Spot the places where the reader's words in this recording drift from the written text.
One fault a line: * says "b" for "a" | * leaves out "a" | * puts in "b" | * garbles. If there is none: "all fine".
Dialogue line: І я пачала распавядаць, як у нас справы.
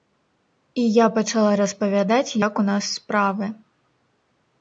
all fine